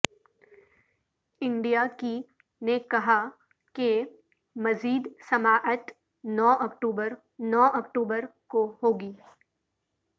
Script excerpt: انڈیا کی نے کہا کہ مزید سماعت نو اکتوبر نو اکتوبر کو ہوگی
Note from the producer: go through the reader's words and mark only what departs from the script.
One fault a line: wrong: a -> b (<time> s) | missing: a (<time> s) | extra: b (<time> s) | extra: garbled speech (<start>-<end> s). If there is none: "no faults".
no faults